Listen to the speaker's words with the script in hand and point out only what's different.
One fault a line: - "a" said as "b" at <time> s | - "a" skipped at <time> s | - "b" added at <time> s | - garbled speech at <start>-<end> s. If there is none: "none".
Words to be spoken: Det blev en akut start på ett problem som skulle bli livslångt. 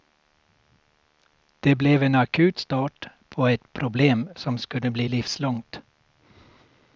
none